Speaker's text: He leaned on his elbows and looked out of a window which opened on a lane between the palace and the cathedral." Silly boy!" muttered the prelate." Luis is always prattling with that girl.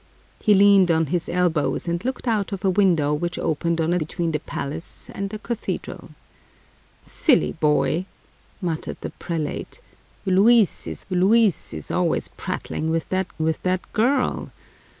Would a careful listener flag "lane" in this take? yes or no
yes